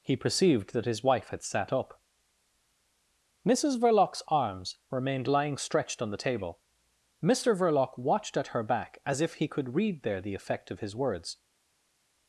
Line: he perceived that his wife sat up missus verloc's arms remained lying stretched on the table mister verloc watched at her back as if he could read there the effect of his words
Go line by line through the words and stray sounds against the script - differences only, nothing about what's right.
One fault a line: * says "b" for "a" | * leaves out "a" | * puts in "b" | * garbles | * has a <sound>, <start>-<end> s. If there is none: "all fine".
* puts in "had"